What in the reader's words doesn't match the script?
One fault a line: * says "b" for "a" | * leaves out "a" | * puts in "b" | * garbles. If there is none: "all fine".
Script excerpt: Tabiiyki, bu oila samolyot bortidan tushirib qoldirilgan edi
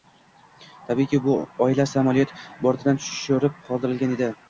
all fine